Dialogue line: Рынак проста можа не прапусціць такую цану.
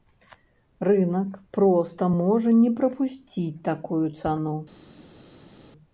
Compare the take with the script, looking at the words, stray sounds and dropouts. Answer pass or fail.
pass